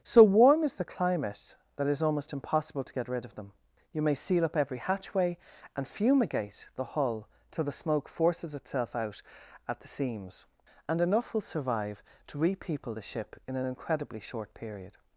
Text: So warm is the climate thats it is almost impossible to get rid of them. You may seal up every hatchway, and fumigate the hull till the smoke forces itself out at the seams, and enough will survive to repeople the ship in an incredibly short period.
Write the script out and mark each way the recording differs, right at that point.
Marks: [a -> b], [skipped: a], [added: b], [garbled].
So warm is the climate [thats -> that] it is almost impossible to get rid of them. You may seal up every hatchway, and fumigate the hull till the smoke forces itself out at the seams, and enough will survive to repeople the ship in an incredibly short period.